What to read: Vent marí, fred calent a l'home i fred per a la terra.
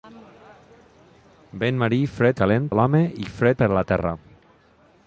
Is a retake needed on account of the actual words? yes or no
no